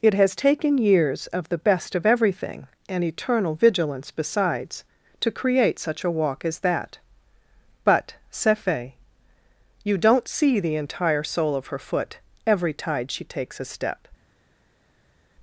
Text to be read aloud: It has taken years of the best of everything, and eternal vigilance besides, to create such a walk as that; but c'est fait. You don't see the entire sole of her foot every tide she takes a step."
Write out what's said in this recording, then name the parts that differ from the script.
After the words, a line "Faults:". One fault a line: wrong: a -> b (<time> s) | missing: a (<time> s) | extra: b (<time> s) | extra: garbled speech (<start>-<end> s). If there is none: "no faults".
It has taken years of the best of everything, and eternal vigilance besides, to create such a walk as that; but c'est fait. You don't see the entire sole of her foot every tide she takes a step."
Faults:
no faults